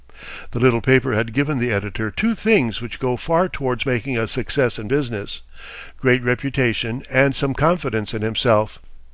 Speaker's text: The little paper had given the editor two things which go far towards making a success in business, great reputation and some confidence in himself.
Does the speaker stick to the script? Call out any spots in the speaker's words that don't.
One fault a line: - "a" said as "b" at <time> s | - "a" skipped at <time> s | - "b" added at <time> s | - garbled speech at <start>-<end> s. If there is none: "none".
none